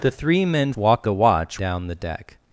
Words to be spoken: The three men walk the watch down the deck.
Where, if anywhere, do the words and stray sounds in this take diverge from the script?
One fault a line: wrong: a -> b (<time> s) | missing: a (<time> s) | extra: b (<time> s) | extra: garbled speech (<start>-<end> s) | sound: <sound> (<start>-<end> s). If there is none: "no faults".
no faults